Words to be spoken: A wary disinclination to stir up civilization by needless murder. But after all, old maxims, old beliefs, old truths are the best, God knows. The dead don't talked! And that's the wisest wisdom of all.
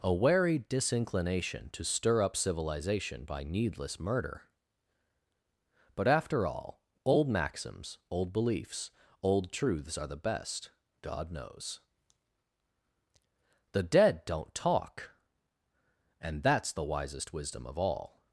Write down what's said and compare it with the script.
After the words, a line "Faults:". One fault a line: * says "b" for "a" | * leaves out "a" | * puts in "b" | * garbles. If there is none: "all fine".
A wary disinclination to stir up civilization by needless murder. But after all, old maxims, old beliefs, old truths are the best, God knows. The dead don't talk! And that's the wisest wisdom of all.
Faults:
* says "talk" for "talked"